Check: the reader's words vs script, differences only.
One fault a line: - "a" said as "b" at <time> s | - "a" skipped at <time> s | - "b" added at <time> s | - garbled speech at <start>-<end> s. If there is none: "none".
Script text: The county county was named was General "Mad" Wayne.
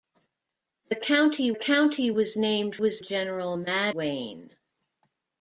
none